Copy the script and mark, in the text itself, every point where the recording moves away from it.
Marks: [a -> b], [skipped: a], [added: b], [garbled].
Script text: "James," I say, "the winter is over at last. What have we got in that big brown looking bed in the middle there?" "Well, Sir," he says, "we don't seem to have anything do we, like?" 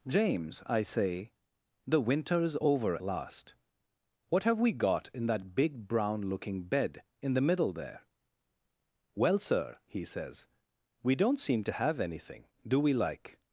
"James," I say, "the winter is over [skipped: at] last. What have we got in that big brown looking bed in the middle there?" "Well, Sir," he says, "we don't seem to have anything do we, like?"